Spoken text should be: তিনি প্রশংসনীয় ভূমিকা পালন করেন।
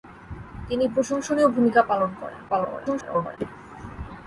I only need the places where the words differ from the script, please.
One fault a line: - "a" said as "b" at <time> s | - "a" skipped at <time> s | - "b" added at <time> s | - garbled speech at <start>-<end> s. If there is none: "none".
- garbled speech at 2.5-3.4 s